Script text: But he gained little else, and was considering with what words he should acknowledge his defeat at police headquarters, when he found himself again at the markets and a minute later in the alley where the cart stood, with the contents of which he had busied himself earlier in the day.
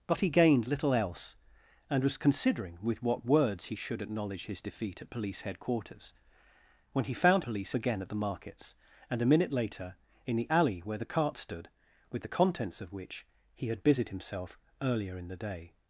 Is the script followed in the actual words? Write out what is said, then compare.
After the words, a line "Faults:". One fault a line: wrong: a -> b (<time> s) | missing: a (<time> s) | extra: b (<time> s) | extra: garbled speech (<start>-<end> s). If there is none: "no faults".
But he gained little else, and was considering with what words he should acknowledge his defeat at police headquarters, when he found police again at the markets and a minute later in the alley where the cart stood, with the contents of which he had busied himself earlier in the day.
Faults:
wrong: himself -> police (7.4 s)